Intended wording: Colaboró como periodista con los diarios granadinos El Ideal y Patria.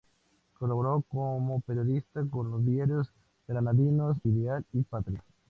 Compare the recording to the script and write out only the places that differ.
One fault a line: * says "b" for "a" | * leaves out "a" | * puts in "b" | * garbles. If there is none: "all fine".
* leaves out "El"